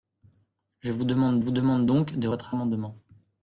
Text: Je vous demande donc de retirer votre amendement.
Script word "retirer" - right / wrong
wrong